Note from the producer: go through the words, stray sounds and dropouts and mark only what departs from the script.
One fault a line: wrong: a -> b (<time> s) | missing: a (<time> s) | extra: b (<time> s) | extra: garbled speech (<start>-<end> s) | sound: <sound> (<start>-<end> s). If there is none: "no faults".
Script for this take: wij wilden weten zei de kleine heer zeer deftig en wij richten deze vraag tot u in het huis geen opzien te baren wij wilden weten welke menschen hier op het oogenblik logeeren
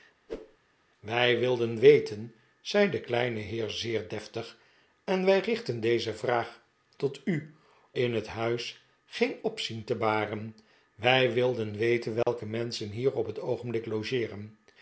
sound: whoosh (0.3-0.6 s)
sound: dropout (12.2-12.3 s)